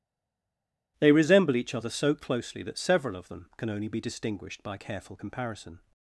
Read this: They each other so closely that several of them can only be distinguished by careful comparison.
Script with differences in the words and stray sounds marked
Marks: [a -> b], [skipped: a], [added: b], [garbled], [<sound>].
They [added: resemble] each other so closely that several of them can only be distinguished by careful comparison.